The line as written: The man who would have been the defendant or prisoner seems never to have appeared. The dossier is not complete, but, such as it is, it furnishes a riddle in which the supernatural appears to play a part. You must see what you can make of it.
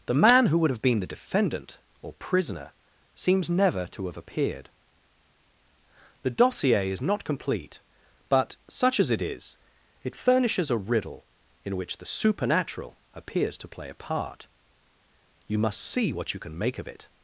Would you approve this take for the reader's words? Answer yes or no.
yes